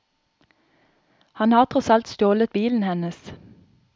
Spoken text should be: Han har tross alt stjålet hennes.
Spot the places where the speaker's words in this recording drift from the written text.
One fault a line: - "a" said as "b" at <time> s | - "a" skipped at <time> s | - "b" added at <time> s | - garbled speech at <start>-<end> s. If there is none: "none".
- "bilen" added at 2.5 s